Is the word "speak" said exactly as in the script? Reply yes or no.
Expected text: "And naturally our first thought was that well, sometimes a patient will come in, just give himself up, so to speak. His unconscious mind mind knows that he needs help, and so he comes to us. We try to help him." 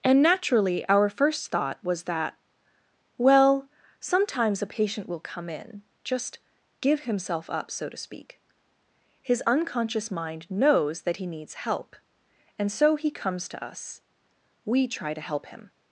yes